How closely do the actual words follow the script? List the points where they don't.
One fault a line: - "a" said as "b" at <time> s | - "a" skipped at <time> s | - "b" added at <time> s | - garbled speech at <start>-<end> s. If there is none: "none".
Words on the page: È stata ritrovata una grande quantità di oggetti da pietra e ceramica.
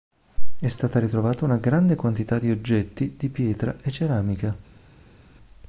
- "da" said as "di" at 3.1 s